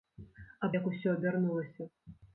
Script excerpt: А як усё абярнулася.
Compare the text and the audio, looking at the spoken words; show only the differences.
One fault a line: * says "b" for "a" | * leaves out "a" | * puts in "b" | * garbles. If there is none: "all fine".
all fine